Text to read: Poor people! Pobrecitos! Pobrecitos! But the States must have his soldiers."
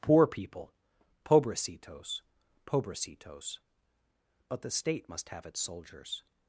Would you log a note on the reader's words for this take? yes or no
yes